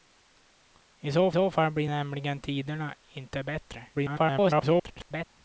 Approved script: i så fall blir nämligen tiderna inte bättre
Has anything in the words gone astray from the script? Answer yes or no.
yes